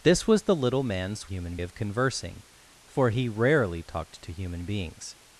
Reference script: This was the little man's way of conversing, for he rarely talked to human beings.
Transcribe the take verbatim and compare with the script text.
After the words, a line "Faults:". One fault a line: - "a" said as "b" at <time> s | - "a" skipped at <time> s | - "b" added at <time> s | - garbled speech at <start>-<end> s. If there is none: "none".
This was the little man's human of conversing, for he rarely talked to human beings.
Faults:
- "way" said as "human" at 1.2 s